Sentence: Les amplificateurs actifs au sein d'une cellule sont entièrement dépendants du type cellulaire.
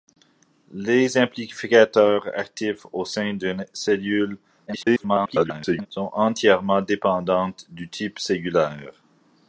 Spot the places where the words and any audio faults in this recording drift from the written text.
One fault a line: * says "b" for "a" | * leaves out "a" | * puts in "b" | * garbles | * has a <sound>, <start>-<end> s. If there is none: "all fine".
* garbles